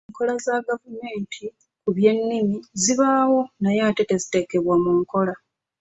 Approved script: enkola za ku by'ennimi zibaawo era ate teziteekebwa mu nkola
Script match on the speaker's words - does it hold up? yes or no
no